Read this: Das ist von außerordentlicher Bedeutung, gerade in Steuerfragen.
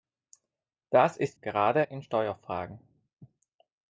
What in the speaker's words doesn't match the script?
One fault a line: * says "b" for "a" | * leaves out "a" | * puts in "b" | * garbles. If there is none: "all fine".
* leaves out "von außerordentlicher Bedeutung"